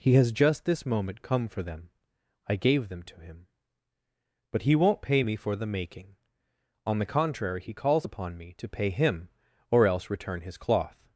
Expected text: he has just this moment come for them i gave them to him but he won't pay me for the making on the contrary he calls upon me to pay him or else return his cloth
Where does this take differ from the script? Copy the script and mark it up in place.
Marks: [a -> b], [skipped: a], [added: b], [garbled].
he has just this moment come for them i gave them to him but he won't pay me for the making on the contrary he calls upon me to pay him or else return his cloth